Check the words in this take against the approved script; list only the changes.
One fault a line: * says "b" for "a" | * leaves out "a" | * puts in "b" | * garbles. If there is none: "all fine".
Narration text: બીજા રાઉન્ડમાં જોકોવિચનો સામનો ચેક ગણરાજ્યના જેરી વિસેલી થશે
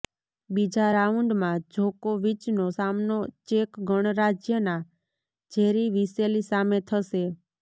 * puts in "સામે"